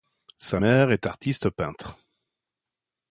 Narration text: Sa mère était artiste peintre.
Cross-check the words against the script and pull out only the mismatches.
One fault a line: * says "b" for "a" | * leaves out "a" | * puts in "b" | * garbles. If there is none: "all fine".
* says "est" for "était"